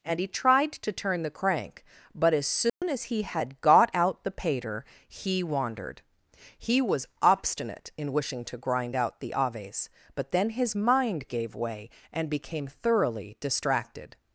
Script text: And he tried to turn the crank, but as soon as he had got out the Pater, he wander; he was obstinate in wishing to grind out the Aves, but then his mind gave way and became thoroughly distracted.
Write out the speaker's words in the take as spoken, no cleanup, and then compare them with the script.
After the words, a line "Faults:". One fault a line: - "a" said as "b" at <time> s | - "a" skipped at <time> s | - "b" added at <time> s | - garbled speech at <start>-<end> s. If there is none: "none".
And he tried to turn the crank, but as soon as he had got out the Pater, he wandered; he was obstinate in wishing to grind out the Aves, but then his mind gave way and became thoroughly distracted.
Faults:
- "wander" said as "wandered" at 5.4 s